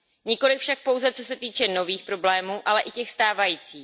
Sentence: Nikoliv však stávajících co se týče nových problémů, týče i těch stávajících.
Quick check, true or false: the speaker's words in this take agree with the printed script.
false